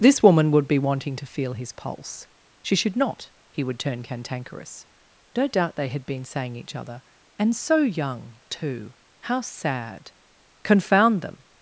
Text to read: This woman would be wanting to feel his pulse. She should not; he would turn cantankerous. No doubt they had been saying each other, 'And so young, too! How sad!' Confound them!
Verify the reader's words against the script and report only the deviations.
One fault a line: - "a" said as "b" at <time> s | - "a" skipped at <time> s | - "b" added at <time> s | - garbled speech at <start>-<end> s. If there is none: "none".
none